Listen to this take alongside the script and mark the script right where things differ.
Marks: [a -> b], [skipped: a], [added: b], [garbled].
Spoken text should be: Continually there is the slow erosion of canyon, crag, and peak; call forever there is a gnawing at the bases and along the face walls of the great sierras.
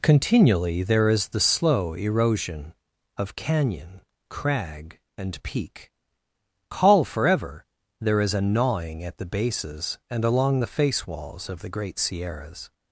Continually there is the slow erosion of canyon, crag, and peak; call forever there is a gnawing at the bases and along the face walls of the great sierras.